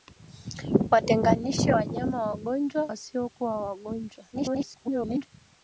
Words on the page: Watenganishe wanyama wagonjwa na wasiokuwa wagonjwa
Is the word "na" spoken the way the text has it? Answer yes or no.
no